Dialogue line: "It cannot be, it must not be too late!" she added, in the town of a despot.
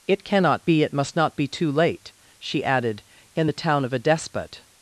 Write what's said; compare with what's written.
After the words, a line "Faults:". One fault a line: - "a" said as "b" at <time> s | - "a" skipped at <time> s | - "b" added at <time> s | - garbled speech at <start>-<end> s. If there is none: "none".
"It cannot be, it must not be too late!" she added, in the town of a despot.
Faults:
none